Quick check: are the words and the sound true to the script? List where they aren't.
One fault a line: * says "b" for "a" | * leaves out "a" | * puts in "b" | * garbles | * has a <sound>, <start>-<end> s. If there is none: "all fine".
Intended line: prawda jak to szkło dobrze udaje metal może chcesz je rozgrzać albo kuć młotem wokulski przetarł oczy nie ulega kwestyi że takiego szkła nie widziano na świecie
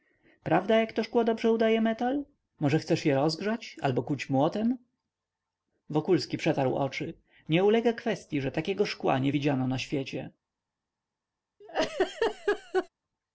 * has a laugh, 11.6-12.9 s